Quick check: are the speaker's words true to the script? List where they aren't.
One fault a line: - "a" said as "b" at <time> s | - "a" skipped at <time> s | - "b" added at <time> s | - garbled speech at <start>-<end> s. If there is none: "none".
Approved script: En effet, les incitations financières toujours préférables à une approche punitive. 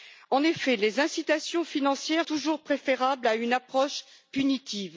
none